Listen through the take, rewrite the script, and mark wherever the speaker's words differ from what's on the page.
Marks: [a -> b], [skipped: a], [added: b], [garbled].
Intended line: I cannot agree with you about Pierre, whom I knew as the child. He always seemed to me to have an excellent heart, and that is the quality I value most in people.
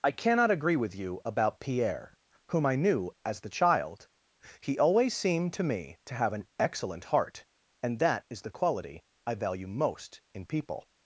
I cannot agree with you about Pierre, whom I knew as the child. He always seemed to me to have an excellent heart, and that is the quality I value most in people.